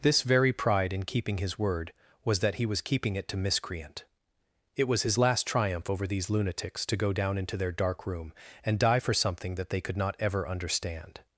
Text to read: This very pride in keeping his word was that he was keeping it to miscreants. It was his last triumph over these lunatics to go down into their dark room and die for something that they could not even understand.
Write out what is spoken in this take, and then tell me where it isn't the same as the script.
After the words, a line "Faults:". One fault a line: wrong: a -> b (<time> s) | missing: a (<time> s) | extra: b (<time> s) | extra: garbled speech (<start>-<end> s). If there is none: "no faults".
This very pride in keeping his word was that he was keeping it to miscreant. It was his last triumph over these lunatics to go down into their dark room and die for something that they could not ever understand.
Faults:
wrong: miscreants -> miscreant (3.4 s)
wrong: even -> ever (10.2 s)